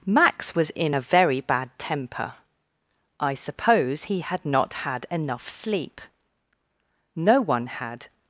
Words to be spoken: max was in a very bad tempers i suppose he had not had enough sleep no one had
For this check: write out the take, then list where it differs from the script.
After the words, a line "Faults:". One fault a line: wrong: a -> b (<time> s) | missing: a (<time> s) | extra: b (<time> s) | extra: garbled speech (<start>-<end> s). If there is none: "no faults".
max was in a very bad temper i suppose he had not had enough sleep no one had
Faults:
wrong: tempers -> temper (1.8 s)